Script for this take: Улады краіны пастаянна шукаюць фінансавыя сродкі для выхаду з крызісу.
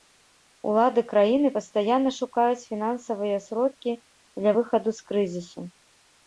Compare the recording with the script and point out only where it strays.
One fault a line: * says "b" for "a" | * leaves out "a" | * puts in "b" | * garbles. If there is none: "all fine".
all fine